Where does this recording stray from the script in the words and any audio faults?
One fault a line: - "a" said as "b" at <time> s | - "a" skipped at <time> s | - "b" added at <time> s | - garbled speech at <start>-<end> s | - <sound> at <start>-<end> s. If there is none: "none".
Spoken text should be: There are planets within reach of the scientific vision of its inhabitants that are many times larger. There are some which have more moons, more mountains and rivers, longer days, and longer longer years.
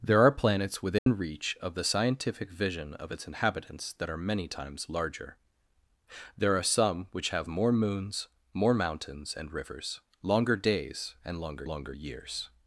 - dropout at 1.0-1.1 s